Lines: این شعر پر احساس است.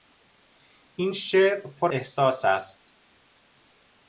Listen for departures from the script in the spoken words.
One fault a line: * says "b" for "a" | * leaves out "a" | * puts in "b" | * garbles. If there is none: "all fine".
all fine